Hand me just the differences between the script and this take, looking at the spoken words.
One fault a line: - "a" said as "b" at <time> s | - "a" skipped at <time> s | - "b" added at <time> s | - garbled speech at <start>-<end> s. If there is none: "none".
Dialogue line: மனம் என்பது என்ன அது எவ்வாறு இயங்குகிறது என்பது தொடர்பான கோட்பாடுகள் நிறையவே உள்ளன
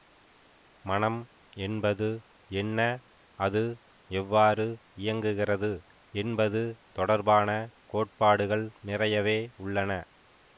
none